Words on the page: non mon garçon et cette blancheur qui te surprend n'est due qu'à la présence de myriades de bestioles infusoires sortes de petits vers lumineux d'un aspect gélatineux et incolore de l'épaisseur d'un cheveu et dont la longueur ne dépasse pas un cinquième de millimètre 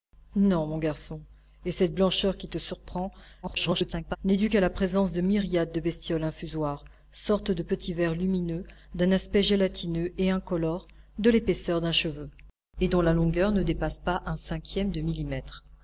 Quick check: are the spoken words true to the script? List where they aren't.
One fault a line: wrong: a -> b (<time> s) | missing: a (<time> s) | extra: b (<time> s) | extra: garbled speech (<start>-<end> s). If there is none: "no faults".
extra: garbled speech (3.4-4.2 s)